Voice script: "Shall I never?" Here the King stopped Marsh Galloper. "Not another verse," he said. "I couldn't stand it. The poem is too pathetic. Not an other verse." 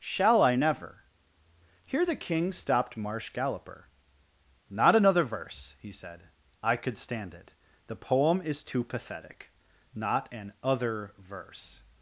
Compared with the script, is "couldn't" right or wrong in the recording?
wrong